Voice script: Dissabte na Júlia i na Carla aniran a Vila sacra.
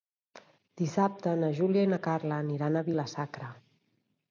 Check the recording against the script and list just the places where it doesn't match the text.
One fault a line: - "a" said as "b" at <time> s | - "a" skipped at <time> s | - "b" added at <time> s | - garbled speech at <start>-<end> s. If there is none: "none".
none